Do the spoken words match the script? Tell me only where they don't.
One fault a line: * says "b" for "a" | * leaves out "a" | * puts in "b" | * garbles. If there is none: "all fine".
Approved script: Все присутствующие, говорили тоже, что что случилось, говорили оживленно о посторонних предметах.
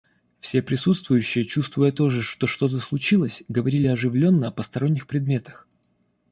* says "чувствуя" for "говорили"
* puts in "то"